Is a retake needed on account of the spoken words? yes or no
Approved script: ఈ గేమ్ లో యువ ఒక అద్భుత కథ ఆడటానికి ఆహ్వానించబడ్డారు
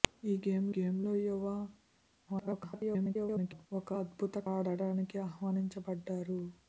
yes